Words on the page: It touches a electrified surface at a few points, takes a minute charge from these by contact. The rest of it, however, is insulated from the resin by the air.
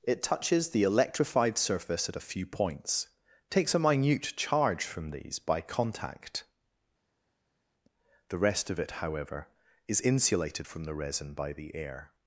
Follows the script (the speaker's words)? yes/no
no